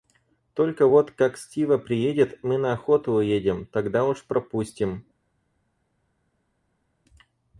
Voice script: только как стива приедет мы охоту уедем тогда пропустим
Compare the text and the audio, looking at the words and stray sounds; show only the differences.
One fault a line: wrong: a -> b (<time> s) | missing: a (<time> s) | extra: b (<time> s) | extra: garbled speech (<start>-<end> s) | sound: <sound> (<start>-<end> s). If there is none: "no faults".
extra: вот (0.9 s)
extra: на (2.6 s)
extra: уж (4.1 s)